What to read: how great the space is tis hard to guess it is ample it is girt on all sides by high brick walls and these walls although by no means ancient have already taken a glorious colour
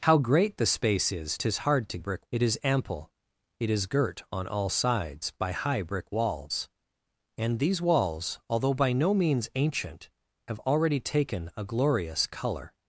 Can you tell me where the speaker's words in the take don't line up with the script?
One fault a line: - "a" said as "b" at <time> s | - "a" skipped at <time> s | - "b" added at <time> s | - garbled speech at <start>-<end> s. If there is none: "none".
- "guess" said as "brick" at 2.0 s